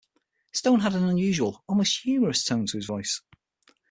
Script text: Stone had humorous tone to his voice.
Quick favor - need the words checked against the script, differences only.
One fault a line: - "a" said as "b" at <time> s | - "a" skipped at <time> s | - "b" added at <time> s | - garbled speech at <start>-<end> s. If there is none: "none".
- "an unusual almost" added at 0.9 s